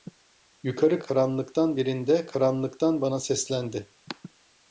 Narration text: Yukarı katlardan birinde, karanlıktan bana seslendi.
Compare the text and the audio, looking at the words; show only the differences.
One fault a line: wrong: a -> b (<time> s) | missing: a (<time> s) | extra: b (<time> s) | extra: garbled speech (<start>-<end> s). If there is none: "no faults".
wrong: katlardan -> karanlıktan (1.0 s)